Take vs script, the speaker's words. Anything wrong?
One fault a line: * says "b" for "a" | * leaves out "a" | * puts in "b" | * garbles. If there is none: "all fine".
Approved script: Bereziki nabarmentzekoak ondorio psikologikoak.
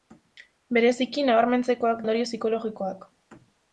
all fine